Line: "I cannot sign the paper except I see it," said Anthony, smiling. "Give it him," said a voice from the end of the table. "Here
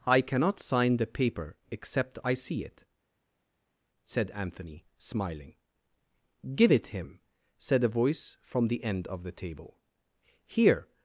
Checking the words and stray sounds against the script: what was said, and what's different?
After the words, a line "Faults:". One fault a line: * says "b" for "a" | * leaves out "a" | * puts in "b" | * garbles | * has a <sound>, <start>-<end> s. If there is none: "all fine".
"I cannot sign the paper except I see it," said Anthony, smiling. "Give it him," said a voice from the end of the table. "Here
Faults:
all fine